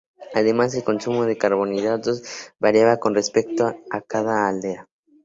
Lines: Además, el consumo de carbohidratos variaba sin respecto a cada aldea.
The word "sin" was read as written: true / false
false